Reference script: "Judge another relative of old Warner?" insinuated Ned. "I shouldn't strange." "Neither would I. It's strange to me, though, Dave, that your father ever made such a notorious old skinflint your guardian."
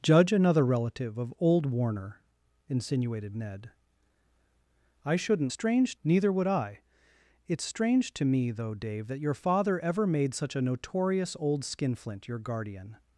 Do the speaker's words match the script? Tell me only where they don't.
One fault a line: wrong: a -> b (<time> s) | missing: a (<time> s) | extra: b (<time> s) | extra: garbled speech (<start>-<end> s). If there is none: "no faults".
no faults